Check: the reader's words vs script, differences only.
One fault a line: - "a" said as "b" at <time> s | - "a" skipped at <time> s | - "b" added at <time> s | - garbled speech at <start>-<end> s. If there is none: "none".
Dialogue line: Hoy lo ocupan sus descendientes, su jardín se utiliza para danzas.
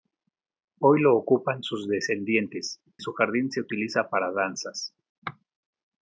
none